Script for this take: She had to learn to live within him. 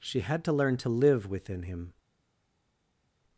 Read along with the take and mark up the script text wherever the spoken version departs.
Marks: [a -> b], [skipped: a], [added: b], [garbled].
She had to learn to live within him.